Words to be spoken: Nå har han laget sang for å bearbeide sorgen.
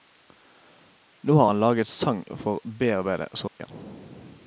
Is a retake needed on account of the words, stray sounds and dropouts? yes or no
yes